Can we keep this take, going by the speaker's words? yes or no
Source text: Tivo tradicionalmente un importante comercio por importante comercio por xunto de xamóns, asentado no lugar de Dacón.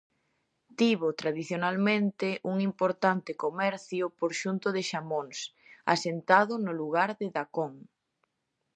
no